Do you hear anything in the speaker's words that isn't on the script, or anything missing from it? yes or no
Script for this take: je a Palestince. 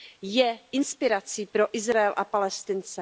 yes